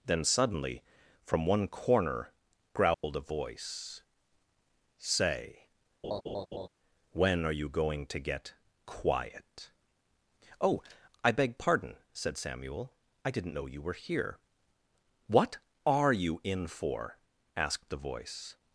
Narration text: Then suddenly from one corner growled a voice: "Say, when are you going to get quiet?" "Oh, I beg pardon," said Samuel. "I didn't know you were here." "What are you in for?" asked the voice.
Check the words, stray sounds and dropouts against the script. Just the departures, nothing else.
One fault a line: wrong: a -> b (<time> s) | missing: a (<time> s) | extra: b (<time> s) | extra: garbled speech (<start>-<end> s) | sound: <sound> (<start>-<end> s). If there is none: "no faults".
sound: dropout (2.9-3.0 s)
sound: laugh (6.0-6.7 s)